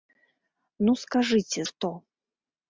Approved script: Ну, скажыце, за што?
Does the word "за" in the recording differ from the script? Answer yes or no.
yes